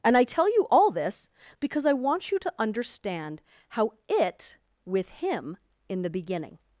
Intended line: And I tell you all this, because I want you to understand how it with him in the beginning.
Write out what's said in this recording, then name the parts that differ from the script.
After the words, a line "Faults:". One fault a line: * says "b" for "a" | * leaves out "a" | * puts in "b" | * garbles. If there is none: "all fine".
And I tell you all this, because I want you to understand how it with him in the beginning.
Faults:
all fine